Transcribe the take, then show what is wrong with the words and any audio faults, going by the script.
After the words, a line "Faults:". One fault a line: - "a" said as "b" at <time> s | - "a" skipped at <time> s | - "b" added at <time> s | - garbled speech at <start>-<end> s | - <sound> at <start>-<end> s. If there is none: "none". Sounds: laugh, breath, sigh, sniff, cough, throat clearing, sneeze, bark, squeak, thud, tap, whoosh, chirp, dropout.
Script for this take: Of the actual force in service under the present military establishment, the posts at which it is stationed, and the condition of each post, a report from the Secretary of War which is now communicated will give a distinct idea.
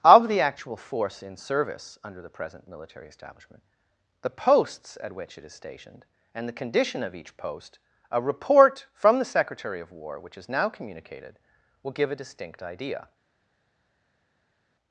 Of the actual force in service under the present military establishment, the posts at which it is stationed, and the condition of each post, a report from the Secretary of War which is now communicated will give a distinct idea.
Faults:
none